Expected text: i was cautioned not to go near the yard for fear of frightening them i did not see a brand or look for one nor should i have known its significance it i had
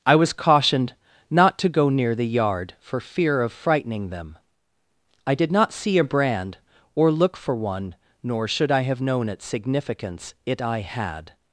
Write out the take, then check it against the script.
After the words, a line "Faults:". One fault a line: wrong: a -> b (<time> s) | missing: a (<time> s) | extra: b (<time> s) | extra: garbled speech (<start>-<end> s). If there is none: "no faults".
i was cautioned not to go near the yard for fear of frightening them i did not see a brand or look for one nor should i have known its significance it i had
Faults:
no faults